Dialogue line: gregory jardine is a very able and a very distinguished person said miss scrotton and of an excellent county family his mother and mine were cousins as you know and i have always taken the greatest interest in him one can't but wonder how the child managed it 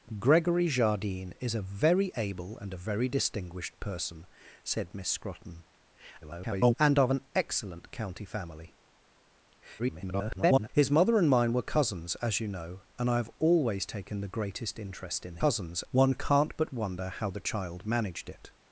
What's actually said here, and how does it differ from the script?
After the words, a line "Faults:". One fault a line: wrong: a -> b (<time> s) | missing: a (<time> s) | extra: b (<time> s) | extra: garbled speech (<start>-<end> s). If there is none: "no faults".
gregory jardine is a very able and a very distinguished person said miss scrotton [garbled] and of an excellent county family [garbled] his mother and mine were cousins as you know and i have always taken the greatest interest in cousins one can't but wonder how the child managed it
Faults:
extra: garbled speech (6.2-6.8 s)
extra: garbled speech (9.8-10.7 s)
wrong: him -> cousins (15.4 s)